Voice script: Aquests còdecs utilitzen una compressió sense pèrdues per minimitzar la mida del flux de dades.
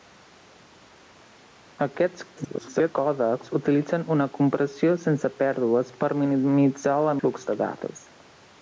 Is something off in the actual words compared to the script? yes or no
yes